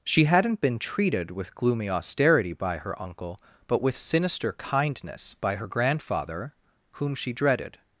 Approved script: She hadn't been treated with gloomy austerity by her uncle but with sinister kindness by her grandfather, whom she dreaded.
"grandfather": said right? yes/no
yes